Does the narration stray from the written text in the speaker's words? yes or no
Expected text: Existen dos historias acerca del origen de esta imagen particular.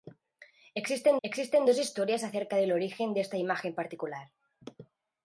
yes